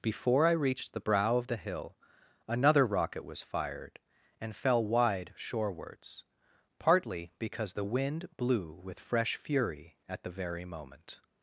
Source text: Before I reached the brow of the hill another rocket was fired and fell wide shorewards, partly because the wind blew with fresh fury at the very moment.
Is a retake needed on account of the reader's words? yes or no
no